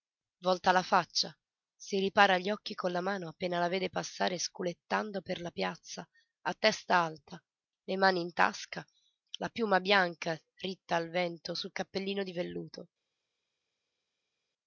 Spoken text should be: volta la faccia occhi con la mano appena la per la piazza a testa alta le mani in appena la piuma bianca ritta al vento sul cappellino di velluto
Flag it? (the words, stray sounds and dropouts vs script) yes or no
yes